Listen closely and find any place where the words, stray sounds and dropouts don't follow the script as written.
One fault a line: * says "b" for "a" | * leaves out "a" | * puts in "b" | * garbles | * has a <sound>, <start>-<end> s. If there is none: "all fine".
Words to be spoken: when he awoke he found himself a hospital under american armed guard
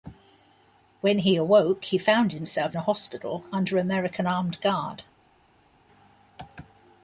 all fine